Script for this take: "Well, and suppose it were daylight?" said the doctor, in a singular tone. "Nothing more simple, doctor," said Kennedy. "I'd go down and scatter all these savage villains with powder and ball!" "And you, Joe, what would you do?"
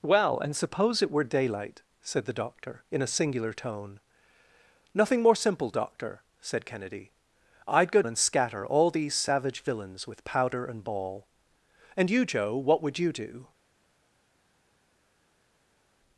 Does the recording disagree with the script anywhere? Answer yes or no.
yes